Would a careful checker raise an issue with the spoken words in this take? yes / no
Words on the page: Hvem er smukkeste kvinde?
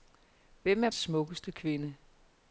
no